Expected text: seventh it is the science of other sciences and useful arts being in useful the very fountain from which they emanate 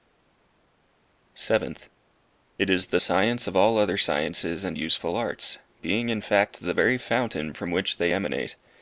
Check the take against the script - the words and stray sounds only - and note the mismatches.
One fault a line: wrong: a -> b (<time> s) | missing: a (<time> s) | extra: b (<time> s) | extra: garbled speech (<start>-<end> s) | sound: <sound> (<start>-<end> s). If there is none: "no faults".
extra: all (3.6 s)
wrong: useful -> fact (6.2 s)